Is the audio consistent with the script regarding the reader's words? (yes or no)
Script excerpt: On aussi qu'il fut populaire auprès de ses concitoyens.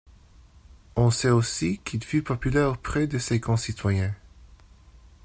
no